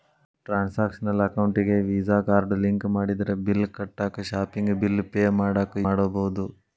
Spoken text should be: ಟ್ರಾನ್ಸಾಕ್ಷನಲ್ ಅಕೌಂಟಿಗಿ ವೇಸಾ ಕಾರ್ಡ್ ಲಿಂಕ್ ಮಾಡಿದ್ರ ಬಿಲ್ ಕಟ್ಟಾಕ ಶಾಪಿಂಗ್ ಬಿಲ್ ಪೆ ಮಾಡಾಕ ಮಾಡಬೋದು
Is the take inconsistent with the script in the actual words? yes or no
no